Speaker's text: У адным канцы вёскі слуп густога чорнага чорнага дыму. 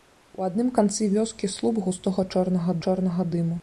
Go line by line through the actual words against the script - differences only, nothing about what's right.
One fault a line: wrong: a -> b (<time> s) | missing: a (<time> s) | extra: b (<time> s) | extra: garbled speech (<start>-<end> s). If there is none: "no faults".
no faults